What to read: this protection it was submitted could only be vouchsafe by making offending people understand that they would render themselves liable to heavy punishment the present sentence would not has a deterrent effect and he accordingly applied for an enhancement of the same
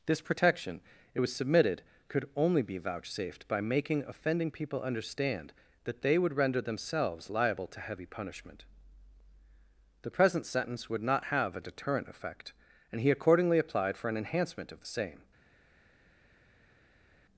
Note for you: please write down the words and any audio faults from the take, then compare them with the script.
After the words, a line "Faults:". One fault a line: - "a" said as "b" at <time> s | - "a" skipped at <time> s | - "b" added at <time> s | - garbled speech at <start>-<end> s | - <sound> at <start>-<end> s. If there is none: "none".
this protection it was submitted could only be vouchsafed by making offending people understand that they would render themselves liable to heavy punishment the present sentence would not have a deterrent effect and he accordingly applied for an enhancement of the same
Faults:
- "vouchsafe" said as "vouchsafed" at 2.8 s
- "has" said as "have" at 11.2 s